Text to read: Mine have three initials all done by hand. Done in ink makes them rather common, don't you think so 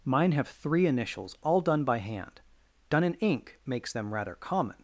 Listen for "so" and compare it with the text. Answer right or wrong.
wrong